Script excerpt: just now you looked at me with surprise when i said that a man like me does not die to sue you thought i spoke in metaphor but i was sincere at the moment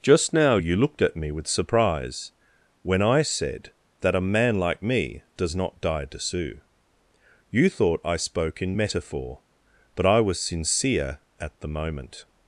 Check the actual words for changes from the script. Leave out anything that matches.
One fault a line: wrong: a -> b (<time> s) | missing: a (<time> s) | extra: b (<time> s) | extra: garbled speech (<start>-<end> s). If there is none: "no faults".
no faults